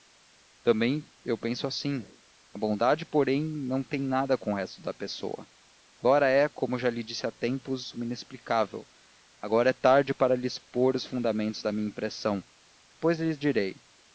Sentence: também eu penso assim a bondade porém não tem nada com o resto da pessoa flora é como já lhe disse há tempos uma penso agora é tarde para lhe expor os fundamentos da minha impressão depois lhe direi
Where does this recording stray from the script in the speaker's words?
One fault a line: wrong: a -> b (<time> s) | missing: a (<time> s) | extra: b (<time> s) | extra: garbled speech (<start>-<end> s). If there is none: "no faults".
wrong: penso -> inexplicável (8.1 s)